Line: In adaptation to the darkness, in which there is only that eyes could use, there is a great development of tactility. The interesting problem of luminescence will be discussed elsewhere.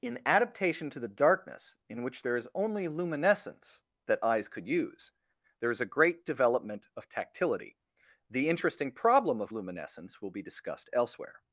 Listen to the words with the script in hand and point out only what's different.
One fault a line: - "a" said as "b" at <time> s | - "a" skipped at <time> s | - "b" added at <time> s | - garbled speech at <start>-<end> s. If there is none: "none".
- "luminescence" added at 2.9 s